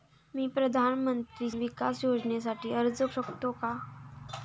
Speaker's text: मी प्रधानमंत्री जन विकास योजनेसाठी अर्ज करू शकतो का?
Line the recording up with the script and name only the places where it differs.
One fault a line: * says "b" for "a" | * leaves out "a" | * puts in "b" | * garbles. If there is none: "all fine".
* leaves out "जन"
* leaves out "करू"